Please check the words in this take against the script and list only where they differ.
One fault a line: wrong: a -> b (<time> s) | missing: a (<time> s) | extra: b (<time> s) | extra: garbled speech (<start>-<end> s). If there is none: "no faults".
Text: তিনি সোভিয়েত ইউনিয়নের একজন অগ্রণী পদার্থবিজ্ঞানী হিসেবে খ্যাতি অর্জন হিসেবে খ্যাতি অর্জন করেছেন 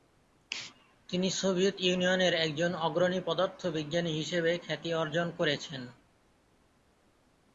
missing: হিসেবে খ্যাতি অর্জন (5.3 s)